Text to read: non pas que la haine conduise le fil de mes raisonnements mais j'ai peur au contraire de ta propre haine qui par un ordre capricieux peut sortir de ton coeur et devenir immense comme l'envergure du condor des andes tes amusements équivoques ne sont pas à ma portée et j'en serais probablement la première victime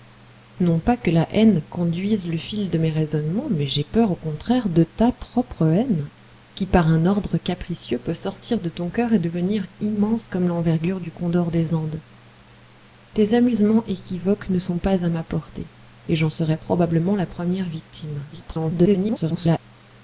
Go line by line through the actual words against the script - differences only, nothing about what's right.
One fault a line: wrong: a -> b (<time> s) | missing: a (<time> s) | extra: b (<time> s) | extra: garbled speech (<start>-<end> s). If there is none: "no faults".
extra: garbled speech (18.3-19.6 s)